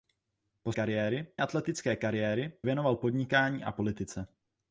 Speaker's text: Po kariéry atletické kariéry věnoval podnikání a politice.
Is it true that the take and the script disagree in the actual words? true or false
false